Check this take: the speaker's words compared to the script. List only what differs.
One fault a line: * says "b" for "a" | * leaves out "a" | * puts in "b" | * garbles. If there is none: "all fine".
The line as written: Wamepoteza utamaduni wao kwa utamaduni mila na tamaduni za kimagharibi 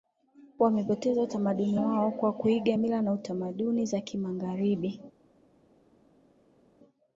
* says "kuiga" for "utamaduni"